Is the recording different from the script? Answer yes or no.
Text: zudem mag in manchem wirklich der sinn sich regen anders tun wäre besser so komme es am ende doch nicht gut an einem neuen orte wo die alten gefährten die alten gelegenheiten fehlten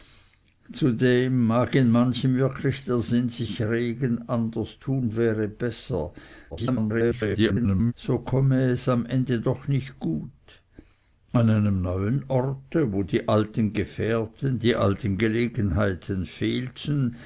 yes